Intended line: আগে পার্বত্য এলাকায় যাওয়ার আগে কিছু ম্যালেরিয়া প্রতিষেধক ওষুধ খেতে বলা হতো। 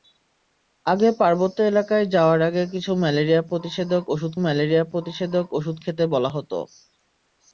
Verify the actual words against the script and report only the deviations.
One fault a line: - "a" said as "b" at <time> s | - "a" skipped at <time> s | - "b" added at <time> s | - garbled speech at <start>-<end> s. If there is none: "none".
- "ম্যালেরিয়া প্রতিষেধক ওষুধ" added at 4.4 s